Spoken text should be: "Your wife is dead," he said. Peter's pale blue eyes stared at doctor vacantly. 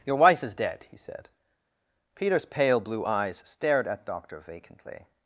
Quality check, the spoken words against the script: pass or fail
pass